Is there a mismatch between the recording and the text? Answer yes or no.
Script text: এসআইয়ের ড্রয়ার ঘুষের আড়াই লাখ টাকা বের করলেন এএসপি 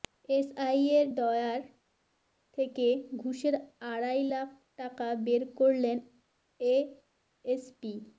yes